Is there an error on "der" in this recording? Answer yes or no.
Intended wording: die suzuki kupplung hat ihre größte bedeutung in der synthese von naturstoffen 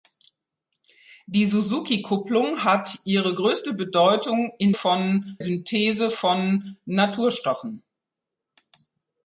yes